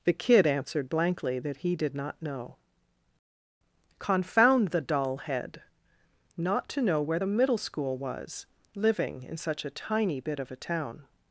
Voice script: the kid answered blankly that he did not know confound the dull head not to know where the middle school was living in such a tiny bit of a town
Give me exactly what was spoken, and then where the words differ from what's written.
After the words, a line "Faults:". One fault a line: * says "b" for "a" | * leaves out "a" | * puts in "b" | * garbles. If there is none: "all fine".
the kid answered blankly that he did not know confound the dull head not to know where the middle school was living in such a tiny bit of a town
Faults:
all fine